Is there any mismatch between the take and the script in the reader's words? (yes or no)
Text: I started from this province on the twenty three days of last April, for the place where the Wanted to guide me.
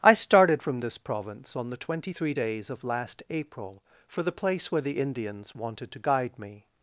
yes